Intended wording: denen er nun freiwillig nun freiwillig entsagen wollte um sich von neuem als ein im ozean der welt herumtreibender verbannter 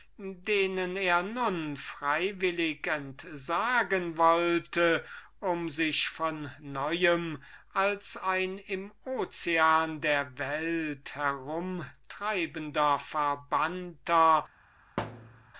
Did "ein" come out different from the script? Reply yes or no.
no